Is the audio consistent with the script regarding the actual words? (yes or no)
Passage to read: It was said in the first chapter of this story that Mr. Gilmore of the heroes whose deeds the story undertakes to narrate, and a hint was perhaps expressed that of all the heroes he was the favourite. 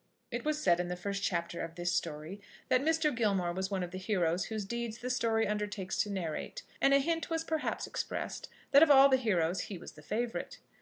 no